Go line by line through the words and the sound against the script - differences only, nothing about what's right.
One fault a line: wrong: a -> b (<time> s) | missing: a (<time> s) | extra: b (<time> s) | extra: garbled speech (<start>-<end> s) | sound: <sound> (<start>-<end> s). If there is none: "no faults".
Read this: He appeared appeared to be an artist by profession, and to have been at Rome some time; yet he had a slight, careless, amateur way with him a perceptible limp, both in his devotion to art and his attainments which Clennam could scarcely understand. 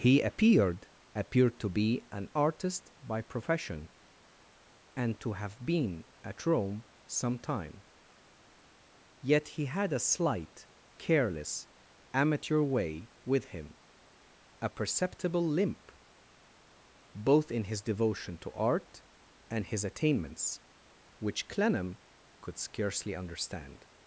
no faults